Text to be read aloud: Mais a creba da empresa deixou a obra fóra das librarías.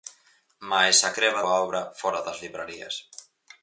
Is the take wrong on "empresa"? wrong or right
wrong